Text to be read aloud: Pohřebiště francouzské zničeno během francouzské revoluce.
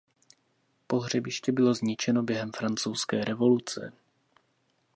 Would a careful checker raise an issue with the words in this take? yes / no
yes